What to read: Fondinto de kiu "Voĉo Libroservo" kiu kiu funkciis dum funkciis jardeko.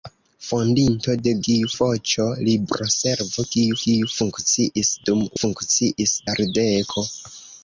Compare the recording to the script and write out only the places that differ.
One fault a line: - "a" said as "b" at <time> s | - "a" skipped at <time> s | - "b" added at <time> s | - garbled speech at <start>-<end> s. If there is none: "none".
none